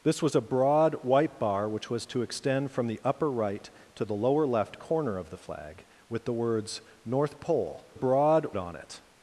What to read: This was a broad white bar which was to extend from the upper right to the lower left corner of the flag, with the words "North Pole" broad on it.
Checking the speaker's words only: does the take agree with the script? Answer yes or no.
yes